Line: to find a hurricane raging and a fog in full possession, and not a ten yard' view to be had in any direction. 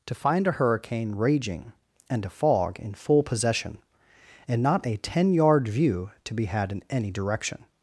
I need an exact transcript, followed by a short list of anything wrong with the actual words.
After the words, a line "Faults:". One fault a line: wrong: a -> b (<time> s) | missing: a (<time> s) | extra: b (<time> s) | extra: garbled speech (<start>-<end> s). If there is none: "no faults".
to find a hurricane raging and a fog in full possession, and not a ten yard' view to be had in any direction.
Faults:
no faults